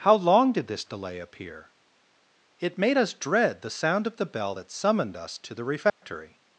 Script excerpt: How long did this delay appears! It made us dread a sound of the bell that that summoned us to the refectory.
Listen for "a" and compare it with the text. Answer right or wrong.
wrong